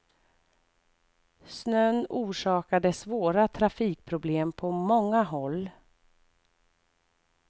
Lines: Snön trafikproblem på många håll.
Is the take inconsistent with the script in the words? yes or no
yes